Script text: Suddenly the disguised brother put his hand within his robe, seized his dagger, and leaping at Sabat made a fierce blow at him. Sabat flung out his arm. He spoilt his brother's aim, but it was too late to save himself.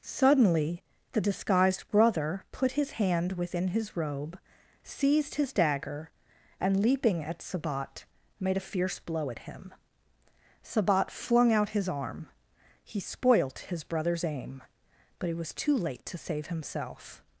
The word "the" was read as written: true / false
true